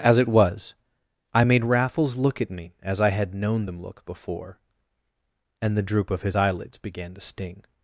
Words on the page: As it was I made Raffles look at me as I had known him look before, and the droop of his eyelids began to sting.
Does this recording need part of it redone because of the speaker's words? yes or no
yes